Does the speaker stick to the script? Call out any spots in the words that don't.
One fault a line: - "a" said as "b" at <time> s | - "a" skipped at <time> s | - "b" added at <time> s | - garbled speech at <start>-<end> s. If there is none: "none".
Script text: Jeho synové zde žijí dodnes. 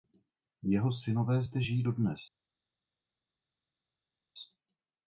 none